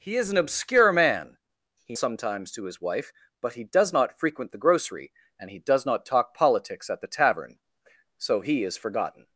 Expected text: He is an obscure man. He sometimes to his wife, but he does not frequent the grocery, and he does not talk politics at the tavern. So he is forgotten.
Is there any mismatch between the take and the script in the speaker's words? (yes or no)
no